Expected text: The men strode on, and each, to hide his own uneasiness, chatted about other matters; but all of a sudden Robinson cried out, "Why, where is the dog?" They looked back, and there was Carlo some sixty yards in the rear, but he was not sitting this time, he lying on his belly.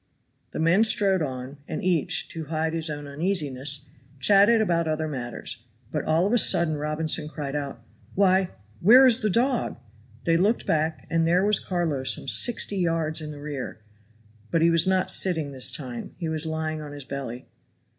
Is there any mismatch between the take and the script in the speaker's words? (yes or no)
yes